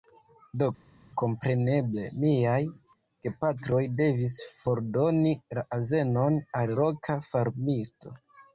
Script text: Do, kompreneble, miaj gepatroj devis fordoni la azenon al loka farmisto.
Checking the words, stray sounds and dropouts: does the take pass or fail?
pass